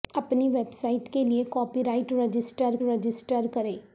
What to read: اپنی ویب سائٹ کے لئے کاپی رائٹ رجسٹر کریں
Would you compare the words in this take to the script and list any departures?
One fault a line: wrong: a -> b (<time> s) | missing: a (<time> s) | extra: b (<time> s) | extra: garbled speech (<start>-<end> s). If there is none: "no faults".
extra: رجسٹر (2.8 s)